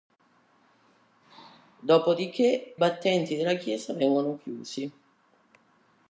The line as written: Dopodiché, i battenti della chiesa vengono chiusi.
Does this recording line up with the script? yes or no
no